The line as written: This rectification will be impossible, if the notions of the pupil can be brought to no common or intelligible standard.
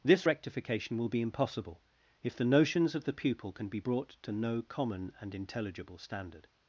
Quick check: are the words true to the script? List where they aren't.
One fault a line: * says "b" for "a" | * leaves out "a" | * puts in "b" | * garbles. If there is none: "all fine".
* says "and" for "or"